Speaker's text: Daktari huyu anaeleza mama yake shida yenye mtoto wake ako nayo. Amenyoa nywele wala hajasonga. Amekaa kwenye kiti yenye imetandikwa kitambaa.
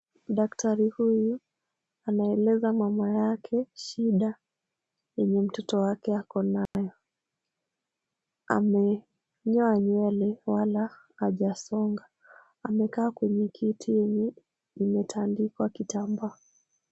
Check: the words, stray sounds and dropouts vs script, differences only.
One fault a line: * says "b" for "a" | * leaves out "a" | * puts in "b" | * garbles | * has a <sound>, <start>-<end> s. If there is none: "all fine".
* has a dropout, 6.7-6.7 s